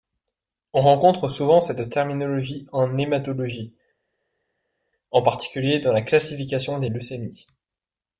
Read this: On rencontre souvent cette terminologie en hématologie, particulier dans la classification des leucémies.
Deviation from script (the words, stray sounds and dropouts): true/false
true